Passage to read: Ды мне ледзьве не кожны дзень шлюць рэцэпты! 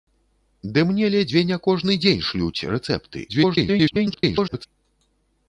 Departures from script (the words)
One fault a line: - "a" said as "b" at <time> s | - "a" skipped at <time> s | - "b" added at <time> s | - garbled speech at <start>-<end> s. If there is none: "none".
- garbled speech at 3.3-4.7 s